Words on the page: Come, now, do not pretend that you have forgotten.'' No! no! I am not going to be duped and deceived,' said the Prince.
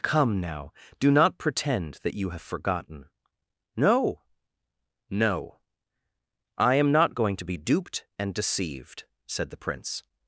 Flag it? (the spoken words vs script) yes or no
no